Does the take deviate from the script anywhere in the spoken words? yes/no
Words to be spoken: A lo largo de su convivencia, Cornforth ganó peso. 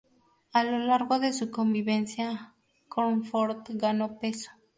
no